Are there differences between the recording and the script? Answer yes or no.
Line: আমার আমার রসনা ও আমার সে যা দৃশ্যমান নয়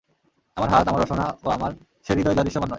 yes